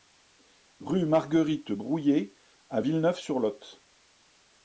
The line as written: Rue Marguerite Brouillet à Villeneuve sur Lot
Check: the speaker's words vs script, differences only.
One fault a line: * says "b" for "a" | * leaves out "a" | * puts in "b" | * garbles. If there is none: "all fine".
all fine